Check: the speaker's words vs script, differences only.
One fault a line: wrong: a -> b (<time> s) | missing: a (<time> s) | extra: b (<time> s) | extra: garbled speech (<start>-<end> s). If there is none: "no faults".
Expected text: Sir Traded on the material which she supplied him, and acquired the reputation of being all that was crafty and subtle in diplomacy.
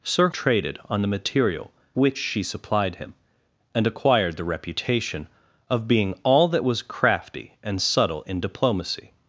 no faults